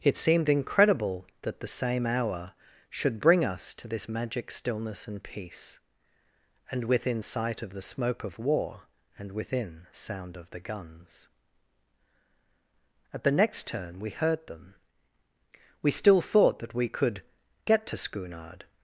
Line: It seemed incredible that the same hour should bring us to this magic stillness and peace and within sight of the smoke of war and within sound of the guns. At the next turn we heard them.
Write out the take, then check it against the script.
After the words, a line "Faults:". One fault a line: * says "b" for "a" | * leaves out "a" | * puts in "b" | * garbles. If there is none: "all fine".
It seemed incredible that the same hour should bring us to this magic stillness and peace and within sight of the smoke of war and within sound of the guns. At the next turn we heard them. We still thought that we could get to Schoonard
Faults:
* puts in "We still thought that we could get to Schoonard"